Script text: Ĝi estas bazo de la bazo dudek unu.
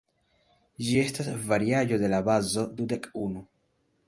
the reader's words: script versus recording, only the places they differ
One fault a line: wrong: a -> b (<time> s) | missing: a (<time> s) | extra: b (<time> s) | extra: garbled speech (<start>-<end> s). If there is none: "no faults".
wrong: bazo -> variaĵo (1.5 s)